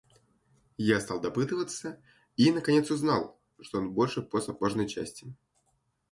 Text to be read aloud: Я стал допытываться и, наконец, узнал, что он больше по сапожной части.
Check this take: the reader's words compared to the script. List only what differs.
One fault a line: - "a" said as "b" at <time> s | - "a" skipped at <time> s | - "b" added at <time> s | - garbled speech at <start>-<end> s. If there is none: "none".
none